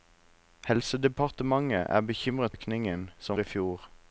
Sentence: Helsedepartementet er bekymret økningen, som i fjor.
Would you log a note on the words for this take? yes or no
no